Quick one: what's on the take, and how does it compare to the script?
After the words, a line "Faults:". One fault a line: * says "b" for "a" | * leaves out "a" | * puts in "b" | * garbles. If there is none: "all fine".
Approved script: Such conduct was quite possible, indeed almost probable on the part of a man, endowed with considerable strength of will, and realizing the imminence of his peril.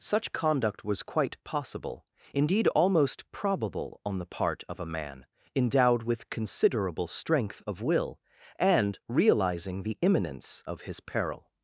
Such conduct was quite possible, indeed almost probable on the part of a man, endowed with considerable strength of will, and realizing the imminence of his peril.
Faults:
all fine